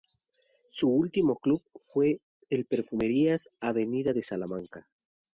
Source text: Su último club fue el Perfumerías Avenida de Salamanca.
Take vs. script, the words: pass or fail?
pass